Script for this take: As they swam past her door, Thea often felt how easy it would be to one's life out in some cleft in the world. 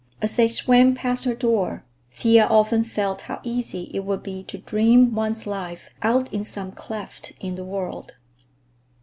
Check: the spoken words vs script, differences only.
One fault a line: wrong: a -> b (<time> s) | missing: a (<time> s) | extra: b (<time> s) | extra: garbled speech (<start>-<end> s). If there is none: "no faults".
extra: dream (4.6 s)